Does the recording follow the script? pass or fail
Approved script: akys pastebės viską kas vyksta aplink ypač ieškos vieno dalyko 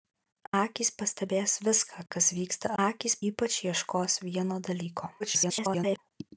fail